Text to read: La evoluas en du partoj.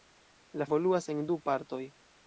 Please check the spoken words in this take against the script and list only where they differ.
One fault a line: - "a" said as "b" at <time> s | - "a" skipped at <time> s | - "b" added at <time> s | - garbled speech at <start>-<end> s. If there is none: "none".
none